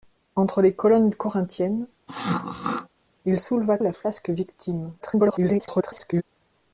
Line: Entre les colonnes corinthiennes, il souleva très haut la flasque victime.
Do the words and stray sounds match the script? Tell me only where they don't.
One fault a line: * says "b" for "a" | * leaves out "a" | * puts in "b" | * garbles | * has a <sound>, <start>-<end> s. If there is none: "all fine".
* has a throat clearing, 2.1-2.9 s
* leaves out "très haut"
* garbles